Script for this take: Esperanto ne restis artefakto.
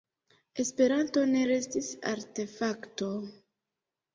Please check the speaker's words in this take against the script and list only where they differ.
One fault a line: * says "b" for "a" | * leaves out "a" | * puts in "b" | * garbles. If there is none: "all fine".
all fine